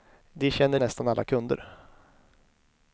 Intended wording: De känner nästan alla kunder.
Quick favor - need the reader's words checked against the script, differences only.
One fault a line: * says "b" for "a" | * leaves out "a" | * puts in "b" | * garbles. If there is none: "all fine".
all fine